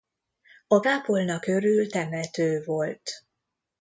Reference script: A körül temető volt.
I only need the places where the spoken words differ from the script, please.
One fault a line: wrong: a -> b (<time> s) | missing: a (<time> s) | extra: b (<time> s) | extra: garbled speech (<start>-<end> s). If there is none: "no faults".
extra: kápolna (0.8 s)